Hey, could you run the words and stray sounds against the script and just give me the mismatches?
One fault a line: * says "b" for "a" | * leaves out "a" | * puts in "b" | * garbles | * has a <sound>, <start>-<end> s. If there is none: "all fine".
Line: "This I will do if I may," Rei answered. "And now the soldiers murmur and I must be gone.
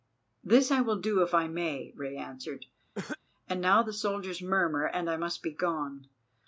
* has a cough, 2.9-3.2 s